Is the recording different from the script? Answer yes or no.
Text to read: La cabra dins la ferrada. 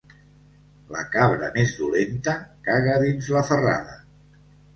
yes